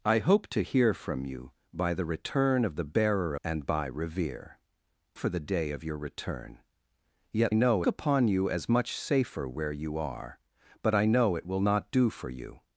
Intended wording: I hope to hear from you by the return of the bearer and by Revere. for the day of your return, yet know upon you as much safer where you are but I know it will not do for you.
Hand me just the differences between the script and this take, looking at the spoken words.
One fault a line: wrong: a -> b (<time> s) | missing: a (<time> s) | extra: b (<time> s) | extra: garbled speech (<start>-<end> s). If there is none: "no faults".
no faults